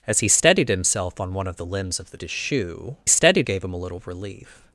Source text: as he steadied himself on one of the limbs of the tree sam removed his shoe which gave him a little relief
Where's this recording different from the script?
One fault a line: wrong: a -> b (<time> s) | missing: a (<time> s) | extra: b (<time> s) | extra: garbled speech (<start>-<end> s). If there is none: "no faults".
missing: tree sam removed (2.2 s)
wrong: which -> steadied (3.1 s)